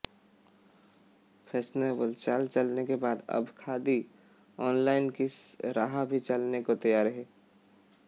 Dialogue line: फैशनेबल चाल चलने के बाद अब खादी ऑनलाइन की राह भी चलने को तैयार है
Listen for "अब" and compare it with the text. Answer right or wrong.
right